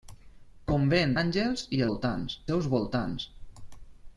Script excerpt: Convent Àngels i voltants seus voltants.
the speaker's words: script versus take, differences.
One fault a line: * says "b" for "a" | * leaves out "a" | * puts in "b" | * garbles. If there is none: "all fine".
all fine